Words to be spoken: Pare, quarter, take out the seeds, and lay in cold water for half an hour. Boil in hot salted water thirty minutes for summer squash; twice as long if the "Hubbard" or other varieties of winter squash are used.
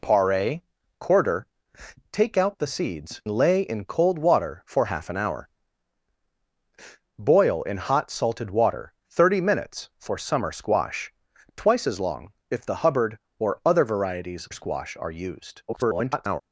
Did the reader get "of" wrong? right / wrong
wrong